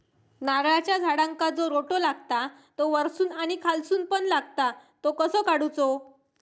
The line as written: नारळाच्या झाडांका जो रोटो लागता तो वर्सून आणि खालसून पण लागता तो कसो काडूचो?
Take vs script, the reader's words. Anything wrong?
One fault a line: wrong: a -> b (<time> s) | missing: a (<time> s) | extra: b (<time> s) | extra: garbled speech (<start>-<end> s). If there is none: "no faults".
no faults